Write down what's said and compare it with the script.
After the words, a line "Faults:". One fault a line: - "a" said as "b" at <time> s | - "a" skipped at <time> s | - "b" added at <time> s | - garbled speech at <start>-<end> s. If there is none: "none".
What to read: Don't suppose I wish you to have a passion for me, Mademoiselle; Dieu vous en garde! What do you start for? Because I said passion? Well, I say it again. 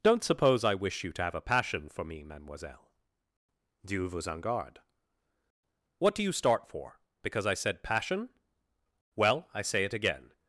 Don't suppose I wish you to have a passion for me, Mademoiselle; Dieu vous en garde! What do you start for? Because I said passion? Well, I say it again.
Faults:
none